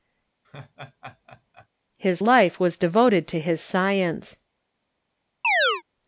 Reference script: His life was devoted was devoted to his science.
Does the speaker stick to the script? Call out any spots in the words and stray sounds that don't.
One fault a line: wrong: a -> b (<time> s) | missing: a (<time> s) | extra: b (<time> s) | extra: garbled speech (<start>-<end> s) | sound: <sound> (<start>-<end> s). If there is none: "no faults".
sound: laugh (0.4-1.7 s)
missing: was devoted (3.3 s)
sound: chirp (5.4-5.8 s)